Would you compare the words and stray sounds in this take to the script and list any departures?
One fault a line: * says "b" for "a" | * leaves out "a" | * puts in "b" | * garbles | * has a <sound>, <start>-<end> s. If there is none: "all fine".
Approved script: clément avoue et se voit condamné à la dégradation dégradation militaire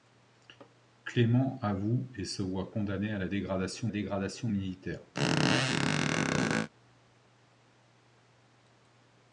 * has a squeak, 5.1-6.7 s